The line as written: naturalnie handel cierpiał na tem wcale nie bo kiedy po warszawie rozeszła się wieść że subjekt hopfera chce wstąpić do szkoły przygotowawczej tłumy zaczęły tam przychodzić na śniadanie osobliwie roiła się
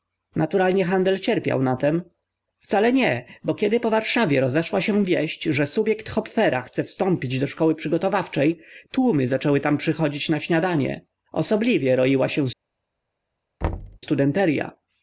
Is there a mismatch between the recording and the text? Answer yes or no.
no